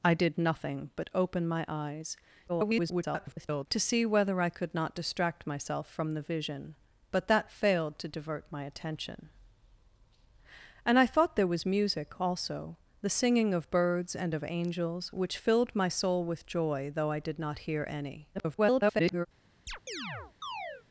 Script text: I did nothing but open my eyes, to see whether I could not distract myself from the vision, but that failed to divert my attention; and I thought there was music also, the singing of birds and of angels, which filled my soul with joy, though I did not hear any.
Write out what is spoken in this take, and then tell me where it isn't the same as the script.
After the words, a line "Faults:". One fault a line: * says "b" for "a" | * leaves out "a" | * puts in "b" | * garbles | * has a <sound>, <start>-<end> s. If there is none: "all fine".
I did nothing but open my eyes, [garbled] to see whether I could not distract myself from the vision, but that failed to divert my attention; and I thought there was music also, the singing of birds and of angels, which filled my soul with joy, though I did not hear any. [garbled]
Faults:
* garbles
* garbles
* has a chirp, 19.7-20.8 s